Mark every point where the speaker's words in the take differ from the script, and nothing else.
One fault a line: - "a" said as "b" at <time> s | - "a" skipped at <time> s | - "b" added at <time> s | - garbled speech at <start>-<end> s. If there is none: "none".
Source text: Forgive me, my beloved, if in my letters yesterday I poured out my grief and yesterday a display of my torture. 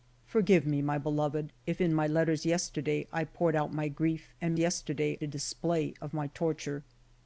none